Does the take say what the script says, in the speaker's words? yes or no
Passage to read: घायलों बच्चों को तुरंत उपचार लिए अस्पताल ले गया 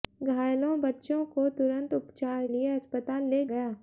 yes